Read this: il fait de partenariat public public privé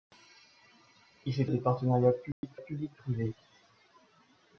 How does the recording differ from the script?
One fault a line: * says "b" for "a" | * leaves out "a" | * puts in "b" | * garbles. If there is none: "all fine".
all fine